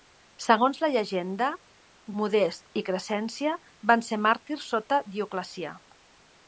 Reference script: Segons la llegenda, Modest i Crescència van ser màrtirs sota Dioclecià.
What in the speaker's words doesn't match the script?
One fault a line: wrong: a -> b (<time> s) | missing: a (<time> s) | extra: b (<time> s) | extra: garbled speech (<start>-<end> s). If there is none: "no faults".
no faults